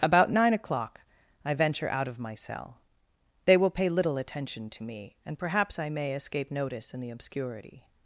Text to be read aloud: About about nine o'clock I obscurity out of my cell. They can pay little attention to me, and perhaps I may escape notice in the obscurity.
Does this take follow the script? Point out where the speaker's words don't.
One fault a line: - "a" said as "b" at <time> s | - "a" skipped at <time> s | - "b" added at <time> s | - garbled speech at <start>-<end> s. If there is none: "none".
- "about" skipped at 0.3 s
- "obscurity" said as "venture" at 1.5 s
- "can" said as "will" at 3.5 s